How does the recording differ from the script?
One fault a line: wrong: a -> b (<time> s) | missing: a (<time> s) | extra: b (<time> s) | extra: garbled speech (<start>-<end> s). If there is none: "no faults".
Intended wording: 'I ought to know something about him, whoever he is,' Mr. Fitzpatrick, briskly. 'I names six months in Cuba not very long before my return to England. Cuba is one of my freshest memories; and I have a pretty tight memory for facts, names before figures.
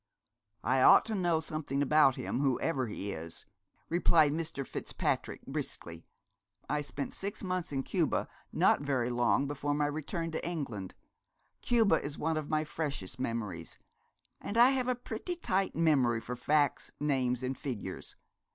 extra: replied (3.9 s)
wrong: names -> spent (6.8 s)
wrong: before -> and (17.4 s)